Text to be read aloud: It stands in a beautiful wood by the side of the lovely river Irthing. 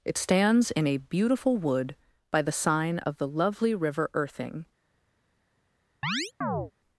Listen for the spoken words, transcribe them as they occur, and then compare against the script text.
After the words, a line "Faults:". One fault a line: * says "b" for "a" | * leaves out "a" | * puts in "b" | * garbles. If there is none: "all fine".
It stands in a beautiful wood by the sign of the lovely river Irthing.
Faults:
* says "sign" for "side"